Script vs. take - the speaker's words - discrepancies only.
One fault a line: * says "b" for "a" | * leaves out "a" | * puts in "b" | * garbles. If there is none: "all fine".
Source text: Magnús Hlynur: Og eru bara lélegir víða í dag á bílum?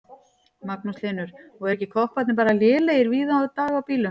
* puts in "ekki kopparnir"